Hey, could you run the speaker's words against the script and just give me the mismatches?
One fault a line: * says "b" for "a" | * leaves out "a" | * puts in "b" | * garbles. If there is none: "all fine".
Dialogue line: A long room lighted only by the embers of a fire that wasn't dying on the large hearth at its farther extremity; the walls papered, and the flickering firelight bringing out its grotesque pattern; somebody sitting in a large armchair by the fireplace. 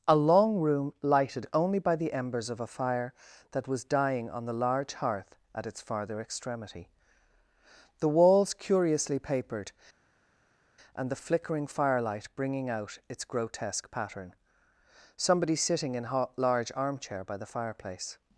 * says "was" for "wasn't"
* puts in "curiously"